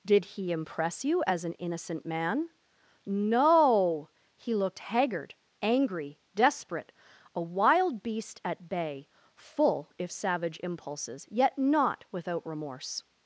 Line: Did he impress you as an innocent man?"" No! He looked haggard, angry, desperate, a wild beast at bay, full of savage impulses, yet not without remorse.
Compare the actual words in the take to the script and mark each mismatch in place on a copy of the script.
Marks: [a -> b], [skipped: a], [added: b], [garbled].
Did he impress you as an innocent man?"" No! He looked haggard, angry, desperate, a wild beast at bay, full [of -> if] savage impulses, yet not without remorse.